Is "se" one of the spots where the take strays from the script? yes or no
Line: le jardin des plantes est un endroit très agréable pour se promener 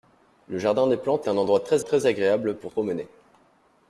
yes